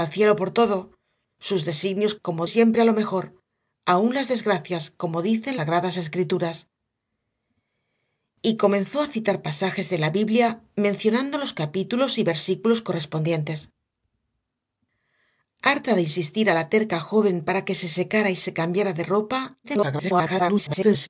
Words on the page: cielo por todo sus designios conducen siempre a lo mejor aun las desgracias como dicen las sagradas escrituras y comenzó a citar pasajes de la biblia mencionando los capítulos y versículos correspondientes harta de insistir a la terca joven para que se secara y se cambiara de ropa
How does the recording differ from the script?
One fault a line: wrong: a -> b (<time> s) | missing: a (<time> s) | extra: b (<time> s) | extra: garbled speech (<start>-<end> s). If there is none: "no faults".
wrong: conducen -> como (2.2 s)
missing: las (5.6 s)
extra: garbled speech (19.6-21.1 s)